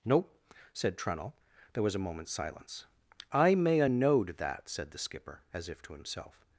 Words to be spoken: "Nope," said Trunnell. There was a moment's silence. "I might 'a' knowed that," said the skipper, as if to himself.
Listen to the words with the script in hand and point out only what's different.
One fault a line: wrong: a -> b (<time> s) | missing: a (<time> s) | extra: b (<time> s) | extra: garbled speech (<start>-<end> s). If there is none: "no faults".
wrong: might -> may (3.5 s)